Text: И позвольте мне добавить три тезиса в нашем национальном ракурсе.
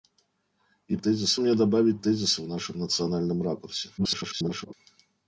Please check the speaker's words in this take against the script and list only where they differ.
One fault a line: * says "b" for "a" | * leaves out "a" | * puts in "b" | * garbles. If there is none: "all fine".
* says "тезиса" for "позвольте"
* leaves out "три"
* garbles